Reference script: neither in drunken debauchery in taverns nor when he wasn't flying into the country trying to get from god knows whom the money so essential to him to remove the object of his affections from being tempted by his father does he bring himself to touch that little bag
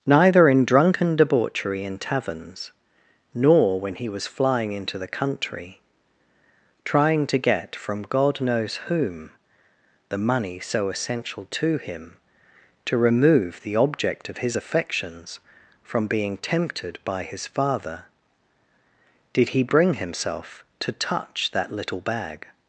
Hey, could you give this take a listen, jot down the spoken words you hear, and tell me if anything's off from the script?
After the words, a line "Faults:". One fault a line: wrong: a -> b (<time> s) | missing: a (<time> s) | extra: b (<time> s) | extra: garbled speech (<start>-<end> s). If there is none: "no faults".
neither in drunken debauchery in taverns nor when he was flying into the country trying to get from god knows whom the money so essential to him to remove the object of his affections from being tempted by his father did he bring himself to touch that little bag
Faults:
wrong: wasn't -> was (4.1 s)
wrong: does -> did (19.3 s)